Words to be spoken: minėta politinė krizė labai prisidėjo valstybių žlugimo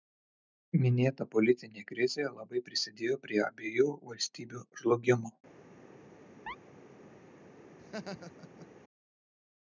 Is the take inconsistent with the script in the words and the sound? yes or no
yes